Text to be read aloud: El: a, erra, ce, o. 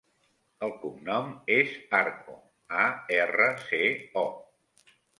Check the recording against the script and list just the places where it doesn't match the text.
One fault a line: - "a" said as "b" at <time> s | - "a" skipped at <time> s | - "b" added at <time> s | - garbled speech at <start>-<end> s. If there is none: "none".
- "cognom és Arco" added at 0.8 s